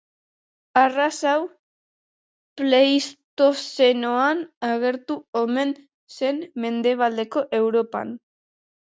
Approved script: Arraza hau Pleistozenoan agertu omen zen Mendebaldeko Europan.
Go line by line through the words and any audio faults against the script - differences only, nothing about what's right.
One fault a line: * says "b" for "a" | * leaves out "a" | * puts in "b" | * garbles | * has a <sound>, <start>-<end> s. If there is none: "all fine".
all fine